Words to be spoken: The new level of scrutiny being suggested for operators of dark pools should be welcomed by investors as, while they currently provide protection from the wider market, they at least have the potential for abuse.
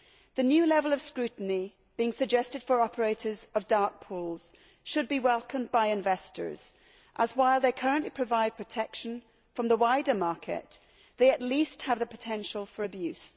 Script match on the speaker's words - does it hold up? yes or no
yes